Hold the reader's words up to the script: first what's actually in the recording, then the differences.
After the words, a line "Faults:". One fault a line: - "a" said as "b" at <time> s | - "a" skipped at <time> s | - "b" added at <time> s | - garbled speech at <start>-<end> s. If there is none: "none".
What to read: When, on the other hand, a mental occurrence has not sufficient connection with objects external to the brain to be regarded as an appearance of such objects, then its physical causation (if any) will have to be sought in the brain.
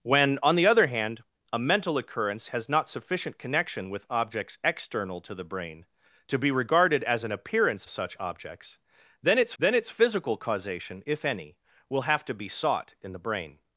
When, on the other hand, a mental occurrence has not sufficient connection with objects external to the brain to be regarded as an appearance such objects, then its then its physical causation (if any) will have to be sought in the brain.
Faults:
- "of" skipped at 7.8 s
- "then its" added at 9.6 s